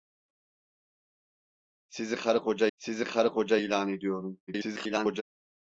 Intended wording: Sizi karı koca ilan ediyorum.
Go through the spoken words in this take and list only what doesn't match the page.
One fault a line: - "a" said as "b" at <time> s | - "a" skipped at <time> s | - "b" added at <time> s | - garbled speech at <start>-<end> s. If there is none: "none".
- "sizi karı koca" added at 2.8 s
- garbled speech at 4.5-5.2 s